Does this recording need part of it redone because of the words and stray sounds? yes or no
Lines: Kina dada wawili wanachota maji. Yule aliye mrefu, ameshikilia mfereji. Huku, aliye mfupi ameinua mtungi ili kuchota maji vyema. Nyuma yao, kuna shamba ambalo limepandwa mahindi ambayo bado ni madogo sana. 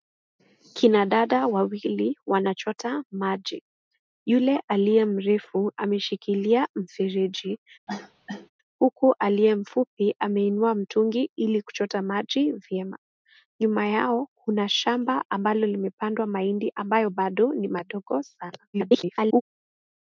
yes